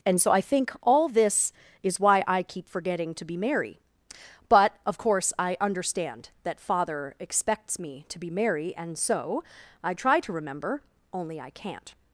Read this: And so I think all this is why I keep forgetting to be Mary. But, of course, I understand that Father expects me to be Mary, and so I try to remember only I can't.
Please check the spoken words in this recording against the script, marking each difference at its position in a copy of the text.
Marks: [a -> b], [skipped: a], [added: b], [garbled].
And so I think all this is why I keep forgetting to be Mary. But, of course, I understand that Father expects me to be Mary, and so I try to remember only I can't.